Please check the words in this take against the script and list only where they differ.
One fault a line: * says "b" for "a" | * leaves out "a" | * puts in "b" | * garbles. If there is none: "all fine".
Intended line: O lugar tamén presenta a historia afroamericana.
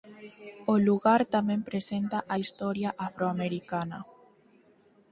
all fine